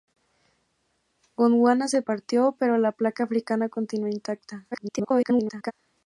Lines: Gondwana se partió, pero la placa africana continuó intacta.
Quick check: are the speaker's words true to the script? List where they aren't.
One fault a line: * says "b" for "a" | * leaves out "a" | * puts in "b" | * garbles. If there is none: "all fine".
* garbles